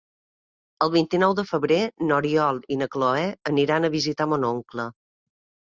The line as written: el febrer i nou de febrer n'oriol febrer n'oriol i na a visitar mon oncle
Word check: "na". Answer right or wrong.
wrong